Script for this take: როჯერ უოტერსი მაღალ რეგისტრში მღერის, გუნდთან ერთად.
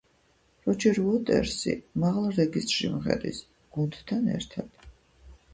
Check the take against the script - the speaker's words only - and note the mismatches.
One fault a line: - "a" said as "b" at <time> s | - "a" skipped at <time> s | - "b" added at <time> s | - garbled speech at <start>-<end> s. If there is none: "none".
none